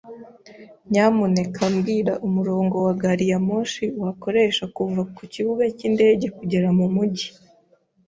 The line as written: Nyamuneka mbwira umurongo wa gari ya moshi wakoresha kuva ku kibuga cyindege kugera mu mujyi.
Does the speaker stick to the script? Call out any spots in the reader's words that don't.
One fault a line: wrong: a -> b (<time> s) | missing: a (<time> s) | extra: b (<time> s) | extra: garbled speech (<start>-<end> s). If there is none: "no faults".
no faults